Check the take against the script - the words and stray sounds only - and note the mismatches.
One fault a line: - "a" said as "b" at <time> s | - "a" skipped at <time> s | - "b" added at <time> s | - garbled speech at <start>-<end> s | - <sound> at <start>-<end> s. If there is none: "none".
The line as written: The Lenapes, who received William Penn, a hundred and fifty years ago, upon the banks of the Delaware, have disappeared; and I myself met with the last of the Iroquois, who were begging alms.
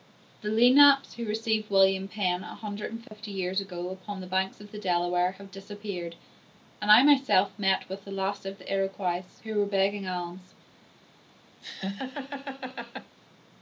- dropout at 3.1-3.1 s
- laugh at 11.6-13.2 s